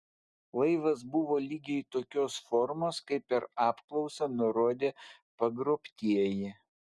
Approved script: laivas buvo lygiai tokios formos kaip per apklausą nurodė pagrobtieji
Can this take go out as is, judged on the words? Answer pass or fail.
pass